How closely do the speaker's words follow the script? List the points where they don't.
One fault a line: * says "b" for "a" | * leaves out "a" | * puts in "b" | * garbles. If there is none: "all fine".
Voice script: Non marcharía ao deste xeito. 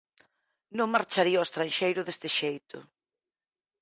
* puts in "estranxeiro"